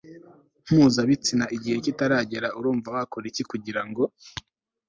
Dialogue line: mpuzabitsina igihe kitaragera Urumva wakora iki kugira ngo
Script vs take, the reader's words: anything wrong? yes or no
no